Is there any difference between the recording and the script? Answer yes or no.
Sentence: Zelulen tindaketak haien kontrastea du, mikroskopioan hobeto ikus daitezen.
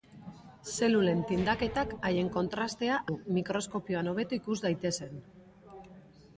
no